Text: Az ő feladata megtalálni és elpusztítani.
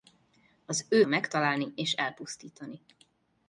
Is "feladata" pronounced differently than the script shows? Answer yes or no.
yes